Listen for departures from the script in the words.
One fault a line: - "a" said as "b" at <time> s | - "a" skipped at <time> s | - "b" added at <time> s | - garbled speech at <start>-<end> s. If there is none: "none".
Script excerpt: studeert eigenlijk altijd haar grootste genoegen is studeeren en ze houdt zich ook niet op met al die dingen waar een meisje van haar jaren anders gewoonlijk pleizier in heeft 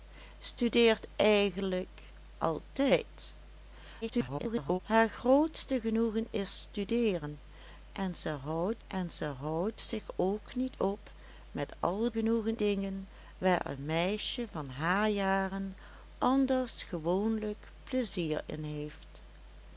- garbled speech at 4.0-4.8 s
- "en ze houdt" added at 8.9 s
- "die" said as "genoegen" at 12.1 s